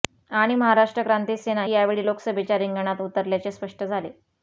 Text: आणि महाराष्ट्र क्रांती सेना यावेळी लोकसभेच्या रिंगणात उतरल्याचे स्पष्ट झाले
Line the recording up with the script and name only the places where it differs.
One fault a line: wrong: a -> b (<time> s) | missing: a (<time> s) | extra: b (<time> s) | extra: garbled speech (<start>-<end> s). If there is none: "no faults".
no faults